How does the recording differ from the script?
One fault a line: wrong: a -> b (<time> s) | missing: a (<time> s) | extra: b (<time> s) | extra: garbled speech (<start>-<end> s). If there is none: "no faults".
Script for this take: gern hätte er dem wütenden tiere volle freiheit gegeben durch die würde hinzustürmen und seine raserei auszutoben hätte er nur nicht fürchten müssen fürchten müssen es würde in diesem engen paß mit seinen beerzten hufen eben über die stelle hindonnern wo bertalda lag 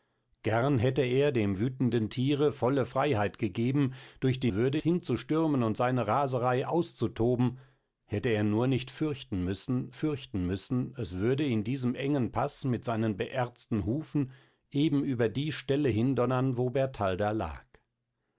no faults